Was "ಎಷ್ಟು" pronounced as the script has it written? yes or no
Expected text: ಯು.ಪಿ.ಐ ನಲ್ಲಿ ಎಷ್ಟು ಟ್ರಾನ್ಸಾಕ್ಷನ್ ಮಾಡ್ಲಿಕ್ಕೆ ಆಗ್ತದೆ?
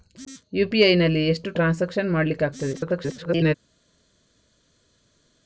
yes